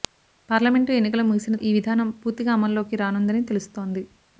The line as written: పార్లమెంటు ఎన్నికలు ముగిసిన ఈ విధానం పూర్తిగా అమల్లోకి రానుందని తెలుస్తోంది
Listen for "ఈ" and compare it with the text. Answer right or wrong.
right